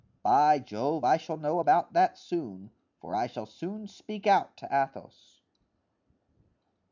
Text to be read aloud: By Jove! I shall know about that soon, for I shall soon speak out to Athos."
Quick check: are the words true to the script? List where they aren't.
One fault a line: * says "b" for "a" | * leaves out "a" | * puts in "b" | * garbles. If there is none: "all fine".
all fine